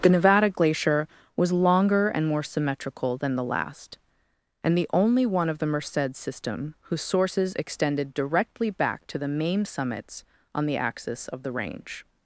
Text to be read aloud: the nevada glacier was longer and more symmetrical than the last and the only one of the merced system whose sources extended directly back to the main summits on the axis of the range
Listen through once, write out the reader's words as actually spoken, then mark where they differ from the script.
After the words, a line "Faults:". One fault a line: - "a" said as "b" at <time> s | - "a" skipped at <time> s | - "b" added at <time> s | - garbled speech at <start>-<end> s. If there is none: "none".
the nevada glacier was longer and more symmetrical than the last and the only one of the merced system whose sources extended directly back to the main summits on the axis of the range
Faults:
none